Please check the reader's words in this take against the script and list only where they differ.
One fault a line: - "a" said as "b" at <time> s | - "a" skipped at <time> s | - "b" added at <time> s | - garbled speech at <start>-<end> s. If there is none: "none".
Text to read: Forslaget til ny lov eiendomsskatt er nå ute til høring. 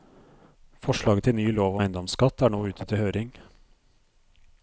none